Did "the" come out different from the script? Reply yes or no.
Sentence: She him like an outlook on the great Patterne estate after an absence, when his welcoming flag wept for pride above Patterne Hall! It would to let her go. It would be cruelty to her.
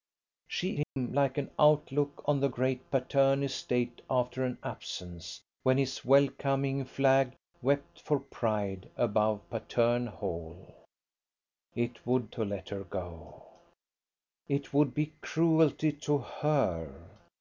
no